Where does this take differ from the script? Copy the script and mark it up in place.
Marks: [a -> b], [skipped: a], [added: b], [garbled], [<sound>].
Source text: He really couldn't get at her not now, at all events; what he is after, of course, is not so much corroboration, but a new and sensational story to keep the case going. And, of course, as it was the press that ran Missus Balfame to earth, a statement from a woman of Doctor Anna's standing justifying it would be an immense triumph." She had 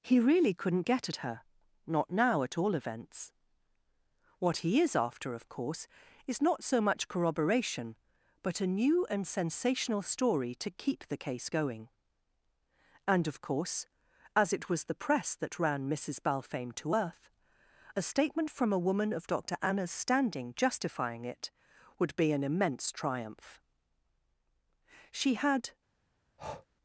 He really couldn't get at her not now, at all events; what he is after, of course, is not so much corroboration, but a new and sensational story to keep the case going. And, of course, as it was the press that ran Missus Balfame to earth, a statement from a woman of Doctor Anna's standing justifying it would be an immense triumph." She had [breath]